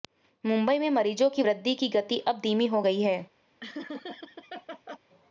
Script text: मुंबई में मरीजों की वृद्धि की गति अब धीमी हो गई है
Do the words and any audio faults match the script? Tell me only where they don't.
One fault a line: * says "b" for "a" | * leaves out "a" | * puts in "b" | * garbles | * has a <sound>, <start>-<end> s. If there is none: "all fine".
* has a laugh, 3.6-5.0 s